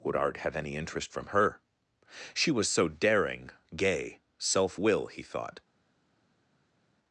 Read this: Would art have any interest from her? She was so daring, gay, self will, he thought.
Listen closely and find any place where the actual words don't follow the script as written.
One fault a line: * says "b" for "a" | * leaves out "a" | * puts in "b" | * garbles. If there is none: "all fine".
all fine